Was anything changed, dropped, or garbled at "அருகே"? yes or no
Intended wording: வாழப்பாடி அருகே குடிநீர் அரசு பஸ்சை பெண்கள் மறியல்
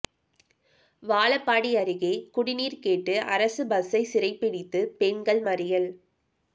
no